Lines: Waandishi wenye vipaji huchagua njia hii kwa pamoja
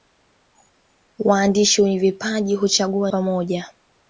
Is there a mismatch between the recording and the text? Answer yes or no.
yes